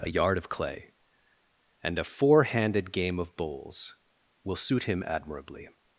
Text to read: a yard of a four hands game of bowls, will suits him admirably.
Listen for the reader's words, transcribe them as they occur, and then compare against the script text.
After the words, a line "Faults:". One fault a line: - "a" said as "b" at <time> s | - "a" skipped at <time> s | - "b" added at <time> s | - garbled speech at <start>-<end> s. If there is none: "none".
a yard of clay, and a four handed game of bowls, will suit him admirably.
Faults:
- "clay and" added at 0.5 s
- "hands" said as "handed" at 2.4 s
- "suits" said as "suit" at 4.6 s